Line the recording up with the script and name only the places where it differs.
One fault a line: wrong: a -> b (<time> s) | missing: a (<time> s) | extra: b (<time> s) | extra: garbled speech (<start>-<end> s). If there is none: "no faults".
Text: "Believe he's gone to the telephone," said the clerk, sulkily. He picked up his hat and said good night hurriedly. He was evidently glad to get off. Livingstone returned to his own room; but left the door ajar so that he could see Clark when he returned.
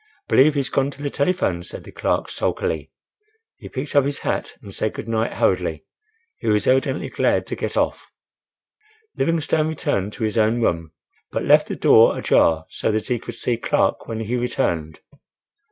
no faults